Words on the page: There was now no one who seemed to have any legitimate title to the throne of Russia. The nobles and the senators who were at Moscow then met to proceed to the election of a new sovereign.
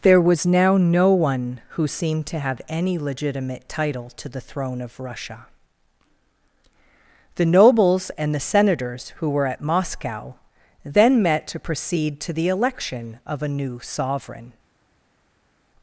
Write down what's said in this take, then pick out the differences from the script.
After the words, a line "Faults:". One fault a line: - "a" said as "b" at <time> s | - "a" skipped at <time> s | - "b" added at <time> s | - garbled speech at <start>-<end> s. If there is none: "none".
There was now no one who seemed to have any legitimate title to the throne of Russia. The nobles and the senators who were at Moscow then met to proceed to the election of a new sovereign.
Faults:
none